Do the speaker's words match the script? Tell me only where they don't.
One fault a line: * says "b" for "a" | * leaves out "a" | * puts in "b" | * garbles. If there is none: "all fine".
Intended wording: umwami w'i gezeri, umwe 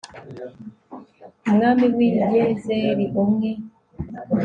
all fine